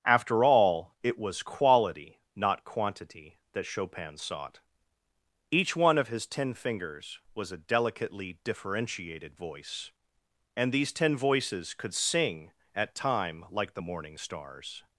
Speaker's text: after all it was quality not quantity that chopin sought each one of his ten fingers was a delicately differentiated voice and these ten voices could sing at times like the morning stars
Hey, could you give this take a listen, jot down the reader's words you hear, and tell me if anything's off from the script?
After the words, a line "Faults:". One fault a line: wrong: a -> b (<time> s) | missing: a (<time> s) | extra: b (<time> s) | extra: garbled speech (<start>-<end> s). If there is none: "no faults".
after all it was quality not quantity that chopin sought each one of his ten fingers was a delicately differentiated voice and these ten voices could sing at time like the morning stars
Faults:
wrong: times -> time (12.9 s)